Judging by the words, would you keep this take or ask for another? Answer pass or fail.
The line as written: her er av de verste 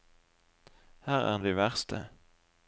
pass